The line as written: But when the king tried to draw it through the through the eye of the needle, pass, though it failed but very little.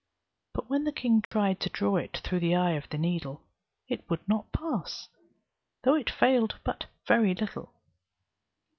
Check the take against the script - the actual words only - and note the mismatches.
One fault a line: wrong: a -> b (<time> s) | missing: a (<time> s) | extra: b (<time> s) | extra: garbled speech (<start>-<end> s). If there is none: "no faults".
missing: through the (2.5 s)
extra: it would not (3.9 s)